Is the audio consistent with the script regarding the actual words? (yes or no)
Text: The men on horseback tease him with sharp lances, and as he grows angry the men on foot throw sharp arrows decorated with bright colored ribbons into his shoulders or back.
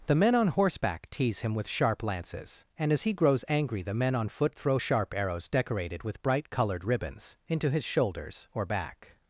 yes